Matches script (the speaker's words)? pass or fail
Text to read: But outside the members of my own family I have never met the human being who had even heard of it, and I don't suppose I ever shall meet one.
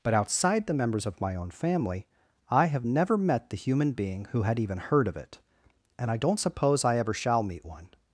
pass